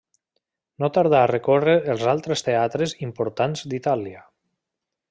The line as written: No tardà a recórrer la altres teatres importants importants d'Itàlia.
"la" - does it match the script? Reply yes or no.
no